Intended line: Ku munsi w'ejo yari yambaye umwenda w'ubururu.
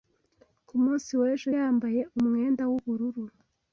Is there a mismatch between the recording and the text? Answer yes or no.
yes